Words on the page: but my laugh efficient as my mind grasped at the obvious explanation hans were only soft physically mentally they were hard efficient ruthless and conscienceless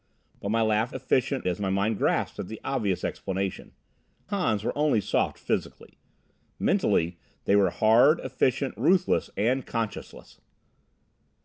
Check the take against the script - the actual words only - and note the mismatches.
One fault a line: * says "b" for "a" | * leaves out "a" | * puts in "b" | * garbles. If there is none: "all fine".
all fine